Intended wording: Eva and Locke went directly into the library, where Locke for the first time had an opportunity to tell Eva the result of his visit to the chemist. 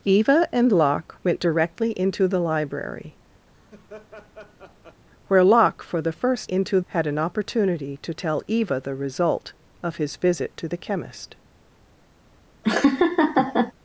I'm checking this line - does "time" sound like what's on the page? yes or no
no